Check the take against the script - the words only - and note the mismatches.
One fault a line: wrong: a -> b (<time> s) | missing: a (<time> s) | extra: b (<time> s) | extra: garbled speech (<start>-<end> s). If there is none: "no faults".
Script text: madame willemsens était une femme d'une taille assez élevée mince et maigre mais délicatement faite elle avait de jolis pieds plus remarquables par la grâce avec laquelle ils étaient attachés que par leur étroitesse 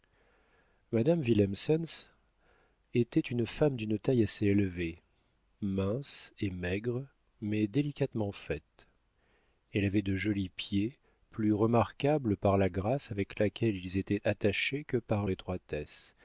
missing: leur (15.3 s)